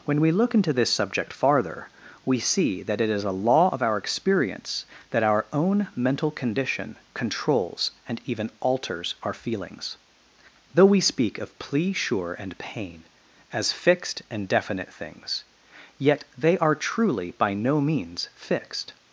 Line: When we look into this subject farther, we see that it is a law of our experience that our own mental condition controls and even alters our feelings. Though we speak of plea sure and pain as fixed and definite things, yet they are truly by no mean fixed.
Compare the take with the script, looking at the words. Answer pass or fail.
fail